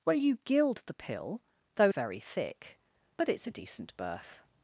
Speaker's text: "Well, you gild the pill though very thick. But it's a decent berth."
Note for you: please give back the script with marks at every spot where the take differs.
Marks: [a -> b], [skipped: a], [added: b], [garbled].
"Well, you gild the pill though very thick. But it's a decent berth."